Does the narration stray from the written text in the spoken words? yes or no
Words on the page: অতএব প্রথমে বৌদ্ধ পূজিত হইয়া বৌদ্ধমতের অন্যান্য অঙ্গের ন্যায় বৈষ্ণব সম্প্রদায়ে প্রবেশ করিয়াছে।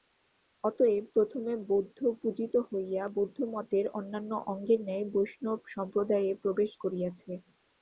no